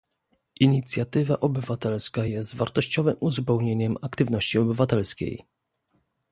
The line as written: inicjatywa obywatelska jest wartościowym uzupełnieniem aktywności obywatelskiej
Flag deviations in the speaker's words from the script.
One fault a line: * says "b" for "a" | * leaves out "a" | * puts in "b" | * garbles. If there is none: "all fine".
all fine